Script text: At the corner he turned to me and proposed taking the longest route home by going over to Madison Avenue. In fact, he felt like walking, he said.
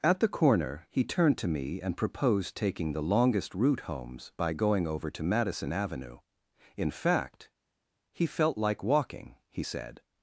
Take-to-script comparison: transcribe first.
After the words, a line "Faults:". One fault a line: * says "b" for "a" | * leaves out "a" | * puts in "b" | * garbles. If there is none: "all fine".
At the corner he turned to me and proposed taking the longest route homes by going over to Madison Avenue. In fact, he felt like walking, he said.
Faults:
* says "homes" for "home"